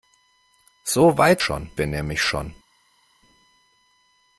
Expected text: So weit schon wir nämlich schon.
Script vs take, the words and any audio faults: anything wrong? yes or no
no